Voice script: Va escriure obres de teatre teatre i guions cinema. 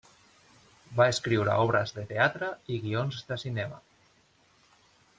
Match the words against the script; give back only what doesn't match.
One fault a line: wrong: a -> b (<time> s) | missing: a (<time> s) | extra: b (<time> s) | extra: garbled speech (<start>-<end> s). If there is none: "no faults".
missing: teatre (2.5 s)
extra: de (3.3 s)